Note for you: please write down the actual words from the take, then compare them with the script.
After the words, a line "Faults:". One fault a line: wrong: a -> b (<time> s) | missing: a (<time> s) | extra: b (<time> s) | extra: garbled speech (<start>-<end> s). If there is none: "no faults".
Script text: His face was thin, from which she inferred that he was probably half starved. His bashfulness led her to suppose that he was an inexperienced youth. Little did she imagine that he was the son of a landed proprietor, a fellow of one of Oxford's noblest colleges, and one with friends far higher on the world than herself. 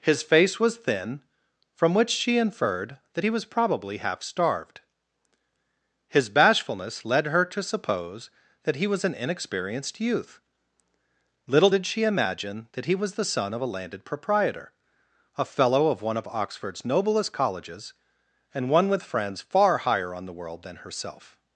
His face was thin, from which she inferred that he was probably half starved. His bashfulness led her to suppose that he was an inexperienced youth. Little did she imagine that he was the son of a landed proprietor, a fellow of one of Oxford's noblest colleges, and one with friends far higher on the world than herself.
Faults:
no faults